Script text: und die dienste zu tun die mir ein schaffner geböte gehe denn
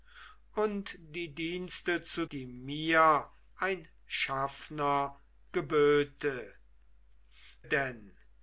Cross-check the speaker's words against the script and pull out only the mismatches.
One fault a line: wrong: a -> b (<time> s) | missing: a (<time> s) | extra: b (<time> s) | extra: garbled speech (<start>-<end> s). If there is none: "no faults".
missing: tun (2.2 s)
missing: gehe (6.5 s)